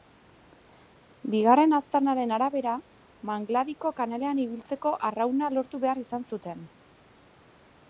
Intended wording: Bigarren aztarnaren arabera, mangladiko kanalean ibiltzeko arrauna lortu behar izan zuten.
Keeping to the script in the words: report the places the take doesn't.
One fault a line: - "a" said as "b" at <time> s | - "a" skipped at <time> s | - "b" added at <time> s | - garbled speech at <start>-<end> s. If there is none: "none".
none